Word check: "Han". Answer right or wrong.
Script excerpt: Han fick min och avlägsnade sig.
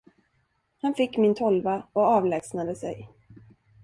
right